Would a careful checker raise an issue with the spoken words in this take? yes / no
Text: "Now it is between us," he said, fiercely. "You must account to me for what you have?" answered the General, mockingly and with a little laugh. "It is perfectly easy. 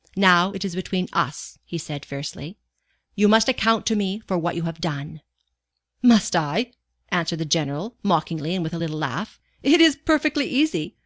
yes